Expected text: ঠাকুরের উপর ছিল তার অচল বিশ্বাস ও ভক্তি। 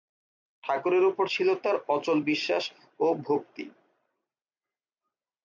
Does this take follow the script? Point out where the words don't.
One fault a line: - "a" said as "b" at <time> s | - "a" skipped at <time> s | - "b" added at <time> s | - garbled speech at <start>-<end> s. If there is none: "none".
none